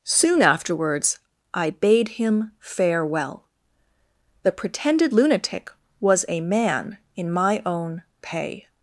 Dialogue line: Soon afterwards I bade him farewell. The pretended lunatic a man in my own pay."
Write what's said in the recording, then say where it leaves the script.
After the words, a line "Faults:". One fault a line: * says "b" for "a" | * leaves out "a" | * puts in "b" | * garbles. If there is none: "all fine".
Soon afterwards I bade him farewell. The pretended lunatic was a man in my own pay."
Faults:
* puts in "was"